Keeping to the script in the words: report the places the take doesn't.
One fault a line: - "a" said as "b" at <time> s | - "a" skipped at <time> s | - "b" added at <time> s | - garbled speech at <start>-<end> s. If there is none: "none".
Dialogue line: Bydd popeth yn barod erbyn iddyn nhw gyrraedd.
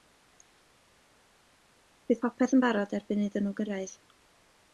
none